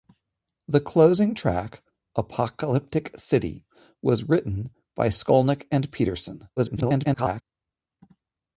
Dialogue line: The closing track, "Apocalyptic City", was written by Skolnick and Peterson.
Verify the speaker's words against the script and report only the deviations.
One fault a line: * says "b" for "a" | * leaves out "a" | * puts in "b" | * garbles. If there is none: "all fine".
* garbles